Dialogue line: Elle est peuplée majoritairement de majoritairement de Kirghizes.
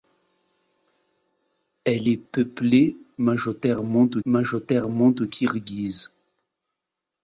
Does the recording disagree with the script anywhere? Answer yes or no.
no